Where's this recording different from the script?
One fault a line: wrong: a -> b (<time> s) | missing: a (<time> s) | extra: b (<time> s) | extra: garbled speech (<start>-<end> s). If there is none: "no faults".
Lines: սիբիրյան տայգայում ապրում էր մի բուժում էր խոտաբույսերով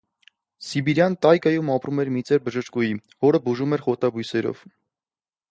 extra: ծեր բժշկուհի որը (2.3 s)